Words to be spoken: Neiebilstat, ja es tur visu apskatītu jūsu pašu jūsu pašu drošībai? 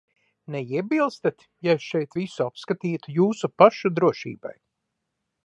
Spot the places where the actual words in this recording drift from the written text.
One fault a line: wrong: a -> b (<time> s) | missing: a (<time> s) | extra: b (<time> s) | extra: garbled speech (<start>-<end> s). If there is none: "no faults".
wrong: tur -> šeit (1.9 s)
missing: jūsu pašu (3.9 s)